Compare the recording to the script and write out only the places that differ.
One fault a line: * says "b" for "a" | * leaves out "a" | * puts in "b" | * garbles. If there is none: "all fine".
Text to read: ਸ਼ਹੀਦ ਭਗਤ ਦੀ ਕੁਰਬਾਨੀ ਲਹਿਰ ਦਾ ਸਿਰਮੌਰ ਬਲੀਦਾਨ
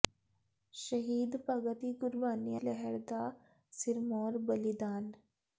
all fine